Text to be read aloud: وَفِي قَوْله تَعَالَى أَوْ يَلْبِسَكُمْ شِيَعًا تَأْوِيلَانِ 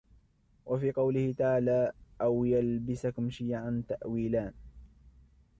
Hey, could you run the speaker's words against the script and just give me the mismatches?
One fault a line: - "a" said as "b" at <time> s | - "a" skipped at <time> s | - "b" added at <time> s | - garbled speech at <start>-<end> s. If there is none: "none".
none